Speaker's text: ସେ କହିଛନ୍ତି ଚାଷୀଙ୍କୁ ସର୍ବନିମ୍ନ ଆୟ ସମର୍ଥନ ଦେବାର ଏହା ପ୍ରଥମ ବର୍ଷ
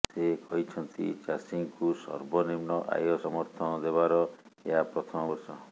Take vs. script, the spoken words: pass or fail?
pass